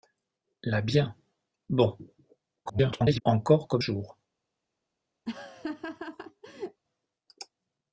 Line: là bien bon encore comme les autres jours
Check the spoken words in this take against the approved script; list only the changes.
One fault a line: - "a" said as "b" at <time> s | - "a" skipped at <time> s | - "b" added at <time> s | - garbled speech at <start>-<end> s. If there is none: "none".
- garbled speech at 2.7-3.2 s
- "les autres" skipped at 3.8 s